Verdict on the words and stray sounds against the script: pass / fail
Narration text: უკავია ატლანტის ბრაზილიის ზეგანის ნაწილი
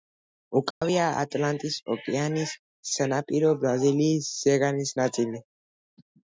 fail